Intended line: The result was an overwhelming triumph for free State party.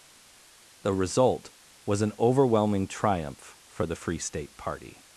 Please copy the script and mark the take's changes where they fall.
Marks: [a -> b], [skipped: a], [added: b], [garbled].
The result was an overwhelming triumph for [added: the] free State party.